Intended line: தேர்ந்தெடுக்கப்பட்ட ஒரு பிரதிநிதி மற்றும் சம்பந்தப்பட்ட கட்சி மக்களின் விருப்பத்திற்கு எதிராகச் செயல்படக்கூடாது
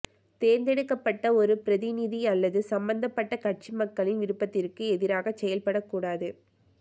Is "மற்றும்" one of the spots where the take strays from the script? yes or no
yes